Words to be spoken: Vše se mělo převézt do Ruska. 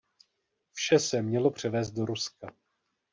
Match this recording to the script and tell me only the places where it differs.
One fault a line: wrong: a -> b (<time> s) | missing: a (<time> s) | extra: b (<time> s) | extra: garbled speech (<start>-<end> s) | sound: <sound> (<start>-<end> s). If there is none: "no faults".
no faults